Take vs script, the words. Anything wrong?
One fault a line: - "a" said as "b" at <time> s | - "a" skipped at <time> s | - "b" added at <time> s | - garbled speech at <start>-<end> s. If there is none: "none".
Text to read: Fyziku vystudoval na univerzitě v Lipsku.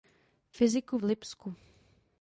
- "vystudoval na univerzitě" skipped at 1.0 s